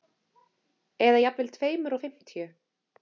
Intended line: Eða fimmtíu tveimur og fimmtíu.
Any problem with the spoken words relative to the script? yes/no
yes